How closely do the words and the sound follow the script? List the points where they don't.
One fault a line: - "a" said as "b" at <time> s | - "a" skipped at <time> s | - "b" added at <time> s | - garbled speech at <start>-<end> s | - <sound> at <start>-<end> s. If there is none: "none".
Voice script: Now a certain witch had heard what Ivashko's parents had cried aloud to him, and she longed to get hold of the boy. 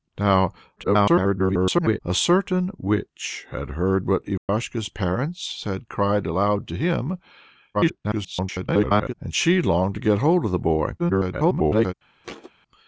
- garbled speech at 0.8-2.0 s
- dropout at 4.4-4.5 s
- garbled speech at 7.7-9.1 s
- garbled speech at 11.0-11.9 s
- thud at 12.2-12.5 s